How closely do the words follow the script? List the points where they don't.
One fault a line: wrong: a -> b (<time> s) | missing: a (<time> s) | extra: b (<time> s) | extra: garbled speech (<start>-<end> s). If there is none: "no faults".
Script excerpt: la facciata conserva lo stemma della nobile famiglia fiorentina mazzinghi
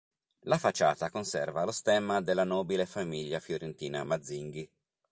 no faults